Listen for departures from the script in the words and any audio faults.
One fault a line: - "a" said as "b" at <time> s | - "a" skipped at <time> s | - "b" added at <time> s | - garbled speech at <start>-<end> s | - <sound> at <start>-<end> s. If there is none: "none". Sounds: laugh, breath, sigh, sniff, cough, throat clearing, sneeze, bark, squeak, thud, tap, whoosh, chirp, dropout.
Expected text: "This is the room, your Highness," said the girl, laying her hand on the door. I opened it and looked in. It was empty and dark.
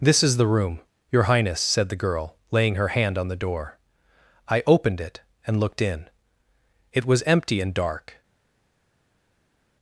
none